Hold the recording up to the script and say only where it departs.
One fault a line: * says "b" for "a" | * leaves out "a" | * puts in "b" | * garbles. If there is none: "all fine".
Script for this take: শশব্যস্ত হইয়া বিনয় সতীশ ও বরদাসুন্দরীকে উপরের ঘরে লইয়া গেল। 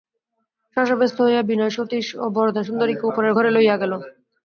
all fine